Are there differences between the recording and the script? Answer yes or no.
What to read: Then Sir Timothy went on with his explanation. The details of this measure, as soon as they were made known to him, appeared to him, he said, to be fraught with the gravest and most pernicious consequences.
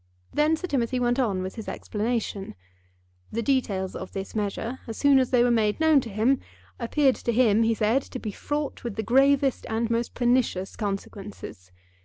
no